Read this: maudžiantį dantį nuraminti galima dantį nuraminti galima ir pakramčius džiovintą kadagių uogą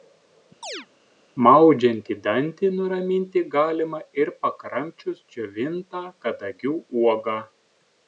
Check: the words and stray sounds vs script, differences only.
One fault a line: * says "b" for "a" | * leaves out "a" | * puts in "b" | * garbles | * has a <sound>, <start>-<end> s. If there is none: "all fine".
* has a chirp, 0.6-0.9 s
* leaves out "dantį nuraminti galima"